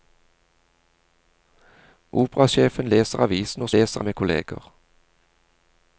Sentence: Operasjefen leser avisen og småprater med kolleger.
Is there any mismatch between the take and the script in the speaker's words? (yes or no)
yes